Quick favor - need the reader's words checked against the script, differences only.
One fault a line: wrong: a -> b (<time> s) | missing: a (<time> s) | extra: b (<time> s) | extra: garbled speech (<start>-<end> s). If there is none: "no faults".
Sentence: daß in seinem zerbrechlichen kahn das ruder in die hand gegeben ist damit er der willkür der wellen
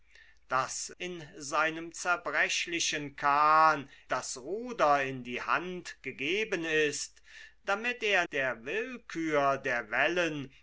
no faults